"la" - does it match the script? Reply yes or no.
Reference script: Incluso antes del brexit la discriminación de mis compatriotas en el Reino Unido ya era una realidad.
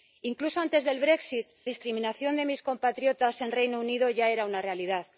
no